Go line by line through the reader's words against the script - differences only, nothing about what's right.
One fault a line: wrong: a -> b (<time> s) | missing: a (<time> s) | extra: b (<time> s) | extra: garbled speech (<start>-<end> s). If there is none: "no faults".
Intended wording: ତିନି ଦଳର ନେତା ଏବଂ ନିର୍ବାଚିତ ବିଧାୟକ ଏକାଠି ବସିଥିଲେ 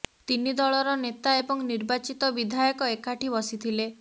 no faults